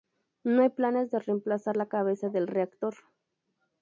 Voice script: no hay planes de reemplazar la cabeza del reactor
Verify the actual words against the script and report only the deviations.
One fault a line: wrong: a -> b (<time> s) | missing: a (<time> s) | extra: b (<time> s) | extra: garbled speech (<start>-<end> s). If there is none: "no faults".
no faults